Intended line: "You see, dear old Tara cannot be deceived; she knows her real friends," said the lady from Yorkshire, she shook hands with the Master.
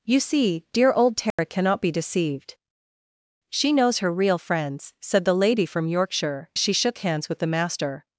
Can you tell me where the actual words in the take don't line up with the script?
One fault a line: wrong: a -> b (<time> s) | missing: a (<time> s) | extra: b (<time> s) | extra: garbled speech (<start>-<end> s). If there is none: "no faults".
no faults